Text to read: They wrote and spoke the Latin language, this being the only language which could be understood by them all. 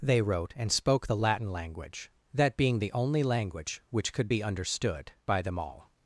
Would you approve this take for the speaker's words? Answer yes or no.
no